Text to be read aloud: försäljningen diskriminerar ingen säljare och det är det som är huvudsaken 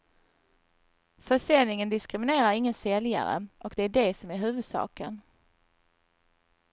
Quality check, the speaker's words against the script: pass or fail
pass